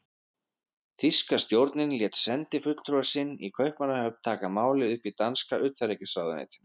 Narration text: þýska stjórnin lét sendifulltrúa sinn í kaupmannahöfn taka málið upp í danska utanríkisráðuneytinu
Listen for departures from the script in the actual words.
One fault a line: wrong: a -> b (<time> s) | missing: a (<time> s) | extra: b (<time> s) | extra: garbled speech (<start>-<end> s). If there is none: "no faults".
no faults